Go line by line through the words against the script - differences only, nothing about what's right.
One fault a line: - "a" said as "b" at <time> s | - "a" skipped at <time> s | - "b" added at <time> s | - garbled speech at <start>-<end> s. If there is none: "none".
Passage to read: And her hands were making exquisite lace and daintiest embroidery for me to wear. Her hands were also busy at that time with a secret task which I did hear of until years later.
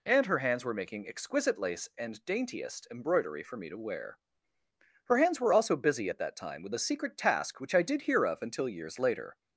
none